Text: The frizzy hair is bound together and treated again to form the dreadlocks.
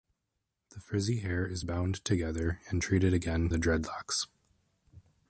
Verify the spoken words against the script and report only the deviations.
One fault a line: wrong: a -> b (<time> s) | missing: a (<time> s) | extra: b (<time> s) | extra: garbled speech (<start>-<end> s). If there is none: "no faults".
missing: to form (3.5 s)